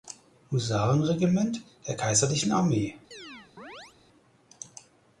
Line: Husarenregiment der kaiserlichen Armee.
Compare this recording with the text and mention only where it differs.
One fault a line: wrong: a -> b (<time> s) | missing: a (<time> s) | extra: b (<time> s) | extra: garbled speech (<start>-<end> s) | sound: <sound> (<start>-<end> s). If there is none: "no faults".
sound: chirp (3.1-4.0 s)